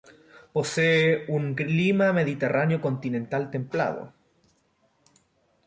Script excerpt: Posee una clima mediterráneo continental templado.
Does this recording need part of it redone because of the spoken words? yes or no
yes